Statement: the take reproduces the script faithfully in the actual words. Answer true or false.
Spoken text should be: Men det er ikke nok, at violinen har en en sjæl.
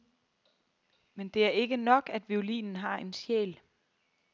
false